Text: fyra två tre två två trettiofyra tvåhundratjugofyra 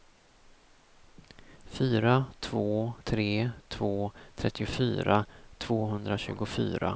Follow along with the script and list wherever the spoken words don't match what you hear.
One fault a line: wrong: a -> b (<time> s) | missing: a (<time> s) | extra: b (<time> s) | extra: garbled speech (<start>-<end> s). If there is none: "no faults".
missing: två (4.1 s)